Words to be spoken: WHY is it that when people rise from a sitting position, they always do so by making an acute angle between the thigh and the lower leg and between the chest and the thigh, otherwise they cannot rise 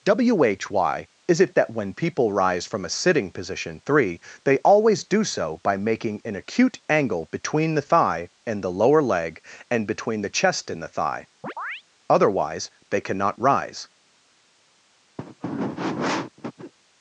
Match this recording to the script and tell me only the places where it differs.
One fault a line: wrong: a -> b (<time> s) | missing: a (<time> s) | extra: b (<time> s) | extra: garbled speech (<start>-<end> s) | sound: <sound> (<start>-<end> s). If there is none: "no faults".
extra: three (3.9 s)
sound: chirp (11.4-11.8 s)
sound: throat clearing (15.2-16.7 s)